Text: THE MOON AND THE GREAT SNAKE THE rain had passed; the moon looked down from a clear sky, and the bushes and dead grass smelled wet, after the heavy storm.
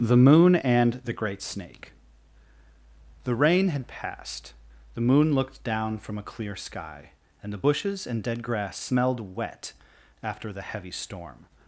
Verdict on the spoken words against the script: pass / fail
pass